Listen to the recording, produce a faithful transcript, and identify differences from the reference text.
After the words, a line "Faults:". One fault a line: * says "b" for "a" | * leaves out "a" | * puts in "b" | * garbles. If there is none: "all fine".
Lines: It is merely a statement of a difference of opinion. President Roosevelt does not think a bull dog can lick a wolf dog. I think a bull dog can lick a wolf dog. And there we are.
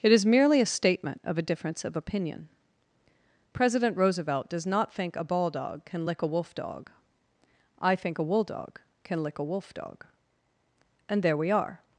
It is merely a statement of a difference of opinion. President Roosevelt does not think a ball dog can lick a wolf dog. I think a wool dog can lick a wolf dog. And there we are.
Faults:
* says "ball" for "bull"
* says "wool" for "bull"